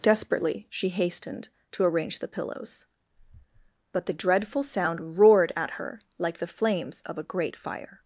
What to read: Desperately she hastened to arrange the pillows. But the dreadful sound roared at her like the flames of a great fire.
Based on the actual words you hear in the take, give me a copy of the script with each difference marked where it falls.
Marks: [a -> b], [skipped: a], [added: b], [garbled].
Desperately she hastened to arrange the pillows. But the dreadful sound roared at her like the flames of a great fire.